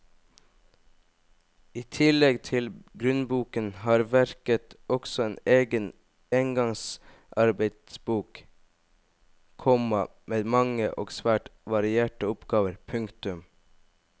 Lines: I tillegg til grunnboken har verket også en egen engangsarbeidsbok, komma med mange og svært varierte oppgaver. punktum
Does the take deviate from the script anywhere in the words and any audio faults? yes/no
no